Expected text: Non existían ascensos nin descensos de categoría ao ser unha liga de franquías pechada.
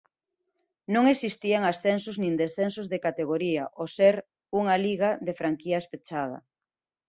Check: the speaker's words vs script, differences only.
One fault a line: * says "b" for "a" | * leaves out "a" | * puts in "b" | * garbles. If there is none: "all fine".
all fine